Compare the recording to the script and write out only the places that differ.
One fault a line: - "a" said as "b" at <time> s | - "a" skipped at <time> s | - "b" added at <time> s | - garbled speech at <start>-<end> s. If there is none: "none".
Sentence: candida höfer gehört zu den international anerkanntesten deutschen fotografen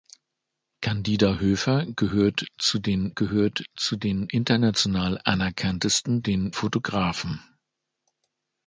- "gehört zu den" added at 3.1 s
- "deutschen" said as "den" at 6.2 s